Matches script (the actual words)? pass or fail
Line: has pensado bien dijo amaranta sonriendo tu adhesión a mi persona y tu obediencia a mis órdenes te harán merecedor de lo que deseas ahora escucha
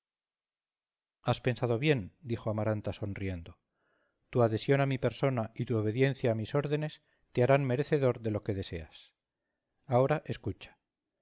pass